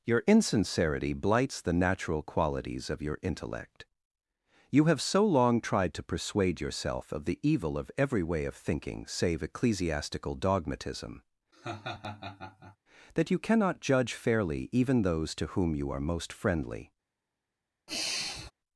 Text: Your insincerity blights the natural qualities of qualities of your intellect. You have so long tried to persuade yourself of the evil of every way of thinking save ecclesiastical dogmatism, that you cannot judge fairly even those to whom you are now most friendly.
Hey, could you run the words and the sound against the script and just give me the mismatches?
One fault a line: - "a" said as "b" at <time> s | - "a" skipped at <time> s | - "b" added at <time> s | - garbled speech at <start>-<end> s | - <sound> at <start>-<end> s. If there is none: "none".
- "qualities of" skipped at 3.0 s
- laugh at 11.5-12.8 s
- "now" skipped at 16.0 s
- sigh at 17.9-18.5 s